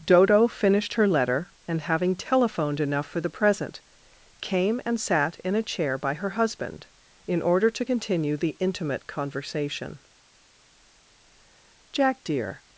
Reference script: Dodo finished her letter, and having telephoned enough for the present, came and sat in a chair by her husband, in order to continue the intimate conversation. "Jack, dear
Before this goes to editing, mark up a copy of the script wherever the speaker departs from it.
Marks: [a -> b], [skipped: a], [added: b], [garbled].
Dodo finished her letter, and having telephoned enough for the present, came and sat in a chair by her husband, in order to continue the intimate conversation. "Jack, dear